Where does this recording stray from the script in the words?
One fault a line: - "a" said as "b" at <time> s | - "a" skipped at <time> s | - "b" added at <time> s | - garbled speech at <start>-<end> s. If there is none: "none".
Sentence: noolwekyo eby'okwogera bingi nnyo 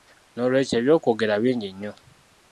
none